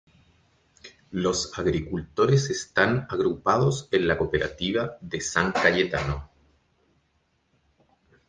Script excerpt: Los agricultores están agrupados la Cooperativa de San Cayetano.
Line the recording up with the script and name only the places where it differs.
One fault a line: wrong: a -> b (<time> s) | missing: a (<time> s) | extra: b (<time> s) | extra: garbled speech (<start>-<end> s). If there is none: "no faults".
extra: en (3.9 s)